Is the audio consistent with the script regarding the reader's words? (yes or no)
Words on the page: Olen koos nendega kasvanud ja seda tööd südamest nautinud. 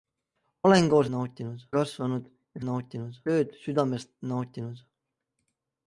no